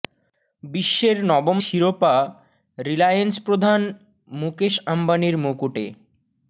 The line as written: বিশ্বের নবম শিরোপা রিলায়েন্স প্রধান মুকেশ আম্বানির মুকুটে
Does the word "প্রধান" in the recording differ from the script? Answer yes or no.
no